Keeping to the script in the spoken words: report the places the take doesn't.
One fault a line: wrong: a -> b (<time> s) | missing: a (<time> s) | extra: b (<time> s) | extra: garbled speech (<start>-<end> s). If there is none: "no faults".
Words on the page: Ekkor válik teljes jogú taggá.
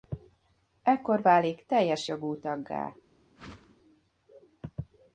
no faults